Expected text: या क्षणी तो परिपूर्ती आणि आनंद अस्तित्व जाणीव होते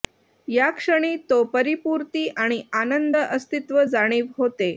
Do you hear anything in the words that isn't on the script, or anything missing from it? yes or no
no